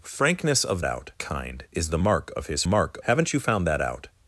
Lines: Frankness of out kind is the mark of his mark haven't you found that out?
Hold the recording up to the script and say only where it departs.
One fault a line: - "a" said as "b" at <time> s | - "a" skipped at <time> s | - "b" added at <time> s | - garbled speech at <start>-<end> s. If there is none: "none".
none